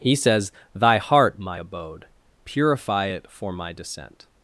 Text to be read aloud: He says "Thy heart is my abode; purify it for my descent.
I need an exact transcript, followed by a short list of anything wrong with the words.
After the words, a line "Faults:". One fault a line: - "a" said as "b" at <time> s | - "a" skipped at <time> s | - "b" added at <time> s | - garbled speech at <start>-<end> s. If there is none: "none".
He says "Thy heart my abode; purify it for my descent.
Faults:
- "is" skipped at 1.4 s